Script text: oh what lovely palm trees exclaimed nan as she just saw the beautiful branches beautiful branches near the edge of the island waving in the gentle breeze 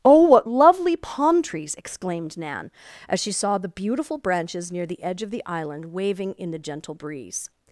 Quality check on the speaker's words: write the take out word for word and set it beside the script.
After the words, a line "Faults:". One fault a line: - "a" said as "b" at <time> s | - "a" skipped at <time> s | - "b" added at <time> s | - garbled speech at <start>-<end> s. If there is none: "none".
oh what lovely palm trees exclaimed nan as she saw the beautiful branches near the edge of the island waving in the gentle breeze
Faults:
- "just" skipped at 3.3 s
- "beautiful branches" skipped at 4.7 s